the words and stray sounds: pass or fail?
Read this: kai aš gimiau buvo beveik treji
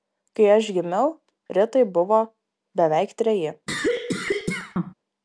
fail